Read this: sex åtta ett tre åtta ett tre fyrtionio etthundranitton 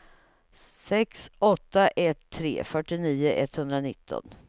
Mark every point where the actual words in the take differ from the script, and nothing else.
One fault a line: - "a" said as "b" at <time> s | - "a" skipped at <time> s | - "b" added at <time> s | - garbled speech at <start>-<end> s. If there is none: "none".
- "åtta ett tre" skipped at 2.6 s